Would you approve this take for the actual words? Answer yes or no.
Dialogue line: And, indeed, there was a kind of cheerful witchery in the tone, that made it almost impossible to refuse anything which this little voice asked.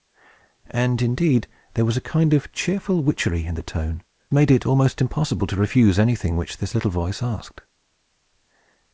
no